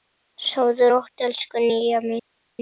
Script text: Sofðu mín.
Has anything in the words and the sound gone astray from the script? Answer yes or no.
yes